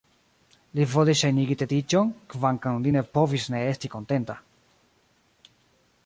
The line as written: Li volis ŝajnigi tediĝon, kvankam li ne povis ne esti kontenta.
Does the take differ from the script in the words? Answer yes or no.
no